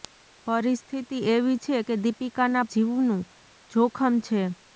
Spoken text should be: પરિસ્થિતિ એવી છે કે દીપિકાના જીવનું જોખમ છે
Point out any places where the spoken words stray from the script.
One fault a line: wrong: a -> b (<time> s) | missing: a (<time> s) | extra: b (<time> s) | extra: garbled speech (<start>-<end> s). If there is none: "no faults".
no faults